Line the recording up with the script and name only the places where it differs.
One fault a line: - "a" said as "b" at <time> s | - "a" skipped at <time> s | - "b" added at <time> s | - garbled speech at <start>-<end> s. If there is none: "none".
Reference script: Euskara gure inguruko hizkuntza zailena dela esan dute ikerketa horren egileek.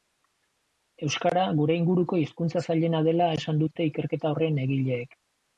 none